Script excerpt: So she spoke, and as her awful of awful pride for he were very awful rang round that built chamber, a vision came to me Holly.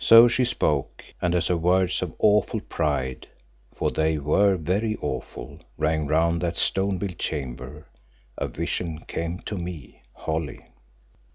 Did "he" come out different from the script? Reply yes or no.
yes